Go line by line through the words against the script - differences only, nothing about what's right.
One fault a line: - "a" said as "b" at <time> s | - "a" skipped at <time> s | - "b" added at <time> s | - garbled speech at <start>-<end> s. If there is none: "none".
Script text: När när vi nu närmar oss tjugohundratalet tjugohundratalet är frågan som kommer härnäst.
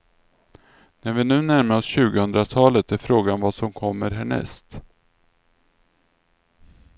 - "när" skipped at 1.1 s
- "tjugohundratalet" skipped at 2.9 s
- "vad" added at 3.4 s